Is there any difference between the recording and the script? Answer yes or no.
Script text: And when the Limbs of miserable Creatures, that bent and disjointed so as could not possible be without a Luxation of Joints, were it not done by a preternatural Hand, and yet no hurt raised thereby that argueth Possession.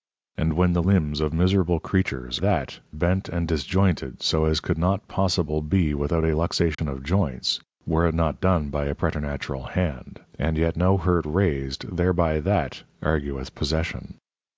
no